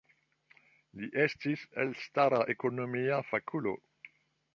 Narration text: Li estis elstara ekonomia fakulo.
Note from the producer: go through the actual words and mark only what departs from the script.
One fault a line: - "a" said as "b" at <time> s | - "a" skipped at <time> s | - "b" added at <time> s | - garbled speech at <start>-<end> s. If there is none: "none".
none